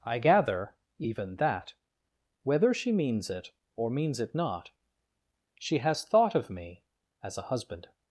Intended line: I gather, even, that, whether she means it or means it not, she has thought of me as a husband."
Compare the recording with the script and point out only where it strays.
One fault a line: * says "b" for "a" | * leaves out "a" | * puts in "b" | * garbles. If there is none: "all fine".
all fine